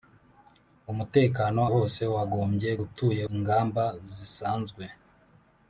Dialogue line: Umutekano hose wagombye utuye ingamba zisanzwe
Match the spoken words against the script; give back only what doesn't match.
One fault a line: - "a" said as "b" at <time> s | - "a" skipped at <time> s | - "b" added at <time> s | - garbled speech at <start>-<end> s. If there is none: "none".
none